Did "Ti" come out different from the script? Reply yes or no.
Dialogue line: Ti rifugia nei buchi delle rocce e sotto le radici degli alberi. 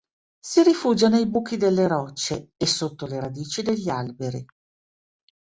yes